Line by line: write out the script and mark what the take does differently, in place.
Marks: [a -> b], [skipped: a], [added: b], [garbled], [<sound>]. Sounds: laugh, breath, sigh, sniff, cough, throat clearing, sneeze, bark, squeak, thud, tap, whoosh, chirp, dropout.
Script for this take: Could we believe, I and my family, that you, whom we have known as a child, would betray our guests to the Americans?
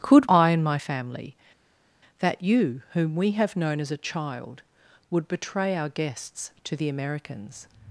Could [skipped: we believe,] I and my family, that you, whom we have known as a child, would betray our guests to the Americans?